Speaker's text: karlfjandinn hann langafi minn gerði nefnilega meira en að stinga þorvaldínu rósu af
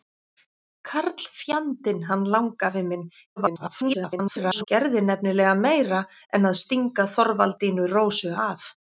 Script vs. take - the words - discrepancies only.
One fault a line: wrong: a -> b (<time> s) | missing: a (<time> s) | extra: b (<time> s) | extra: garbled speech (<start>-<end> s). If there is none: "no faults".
extra: garbled speech (3.4-4.6 s)